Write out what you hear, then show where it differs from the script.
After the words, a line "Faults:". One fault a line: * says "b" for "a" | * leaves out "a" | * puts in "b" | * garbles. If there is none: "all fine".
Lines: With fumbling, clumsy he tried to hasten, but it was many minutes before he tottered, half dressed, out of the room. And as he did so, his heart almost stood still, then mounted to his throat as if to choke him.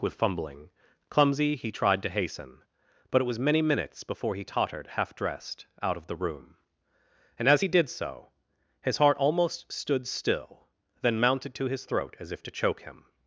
With fumbling, clumsy he tried to hasten, but it was many minutes before he tottered, half dressed, out of the room. And as he did so, his heart almost stood still, then mounted to his throat as if to choke him.
Faults:
all fine